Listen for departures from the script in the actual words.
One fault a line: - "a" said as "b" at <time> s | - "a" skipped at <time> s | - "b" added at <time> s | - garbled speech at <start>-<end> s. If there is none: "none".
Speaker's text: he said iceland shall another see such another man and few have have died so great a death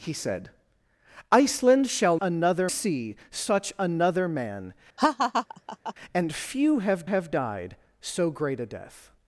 none